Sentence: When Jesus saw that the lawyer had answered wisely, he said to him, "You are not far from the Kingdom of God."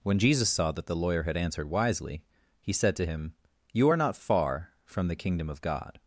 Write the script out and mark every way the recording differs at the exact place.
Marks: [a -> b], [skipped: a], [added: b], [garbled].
When Jesus saw that the lawyer had answered wisely, he said to him, "You are not far from the Kingdom of God."